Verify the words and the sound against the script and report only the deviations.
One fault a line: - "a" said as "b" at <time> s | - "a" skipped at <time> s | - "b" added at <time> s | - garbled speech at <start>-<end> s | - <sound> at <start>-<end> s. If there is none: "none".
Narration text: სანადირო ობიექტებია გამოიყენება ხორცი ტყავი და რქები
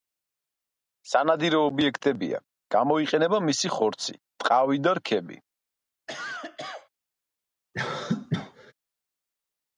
- "მისი" added at 3.5 s
- cough at 6.1-6.9 s
- cough at 7.7-8.7 s